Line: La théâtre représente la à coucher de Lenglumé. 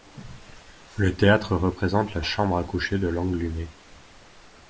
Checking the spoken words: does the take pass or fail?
fail